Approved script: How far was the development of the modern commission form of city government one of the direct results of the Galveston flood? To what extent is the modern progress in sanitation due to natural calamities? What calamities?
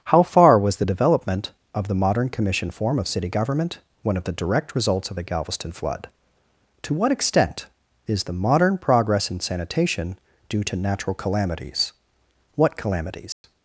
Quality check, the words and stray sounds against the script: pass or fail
fail